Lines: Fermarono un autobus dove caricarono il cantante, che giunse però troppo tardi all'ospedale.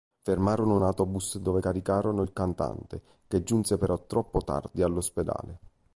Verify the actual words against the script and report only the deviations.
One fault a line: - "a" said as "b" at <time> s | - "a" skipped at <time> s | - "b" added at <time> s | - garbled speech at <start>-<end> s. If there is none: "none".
none